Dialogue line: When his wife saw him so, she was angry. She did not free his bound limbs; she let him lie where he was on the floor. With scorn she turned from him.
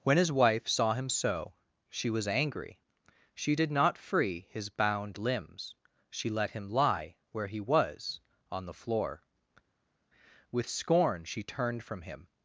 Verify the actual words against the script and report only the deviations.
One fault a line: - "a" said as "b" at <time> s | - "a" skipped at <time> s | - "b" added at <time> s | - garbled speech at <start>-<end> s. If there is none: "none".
none